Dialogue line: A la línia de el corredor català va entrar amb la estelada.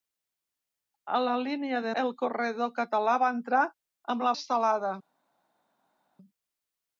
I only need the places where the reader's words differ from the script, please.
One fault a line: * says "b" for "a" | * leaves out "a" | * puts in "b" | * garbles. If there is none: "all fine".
all fine